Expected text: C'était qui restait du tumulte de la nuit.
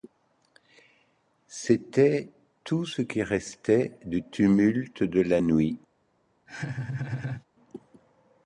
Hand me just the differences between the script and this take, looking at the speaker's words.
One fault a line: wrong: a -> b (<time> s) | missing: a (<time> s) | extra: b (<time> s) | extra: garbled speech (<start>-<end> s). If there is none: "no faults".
extra: tout ce (2.6 s)